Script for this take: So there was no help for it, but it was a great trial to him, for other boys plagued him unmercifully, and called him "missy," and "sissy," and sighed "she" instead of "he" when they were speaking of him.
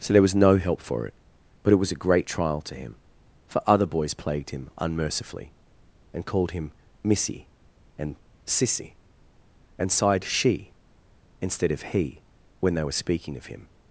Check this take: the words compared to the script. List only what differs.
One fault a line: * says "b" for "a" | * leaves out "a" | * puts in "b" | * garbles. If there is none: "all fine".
all fine